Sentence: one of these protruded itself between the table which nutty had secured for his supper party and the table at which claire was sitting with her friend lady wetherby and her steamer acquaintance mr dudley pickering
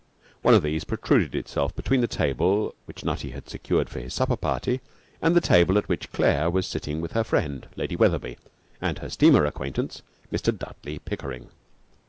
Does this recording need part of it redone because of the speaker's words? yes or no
no